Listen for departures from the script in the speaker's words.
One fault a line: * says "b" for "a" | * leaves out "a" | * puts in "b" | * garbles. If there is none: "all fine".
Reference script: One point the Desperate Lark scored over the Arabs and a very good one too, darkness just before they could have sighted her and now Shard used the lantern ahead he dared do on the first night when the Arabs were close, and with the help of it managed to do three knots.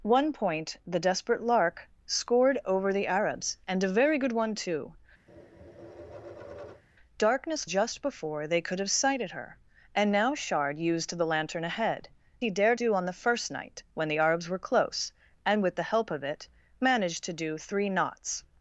all fine